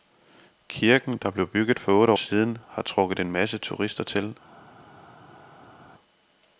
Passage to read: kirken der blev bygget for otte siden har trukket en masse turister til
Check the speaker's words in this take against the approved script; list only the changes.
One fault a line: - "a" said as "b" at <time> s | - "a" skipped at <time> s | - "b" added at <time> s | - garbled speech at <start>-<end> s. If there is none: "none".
none